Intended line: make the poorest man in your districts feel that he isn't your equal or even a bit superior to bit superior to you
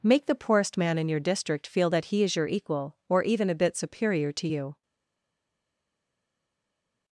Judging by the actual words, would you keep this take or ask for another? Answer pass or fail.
fail